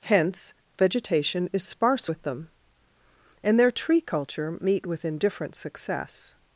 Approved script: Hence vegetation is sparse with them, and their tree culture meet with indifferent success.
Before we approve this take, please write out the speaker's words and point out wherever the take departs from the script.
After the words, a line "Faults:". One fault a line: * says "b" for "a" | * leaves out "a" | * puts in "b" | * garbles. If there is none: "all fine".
Hence vegetation is sparse with them, and their tree culture meet with indifferent success.
Faults:
all fine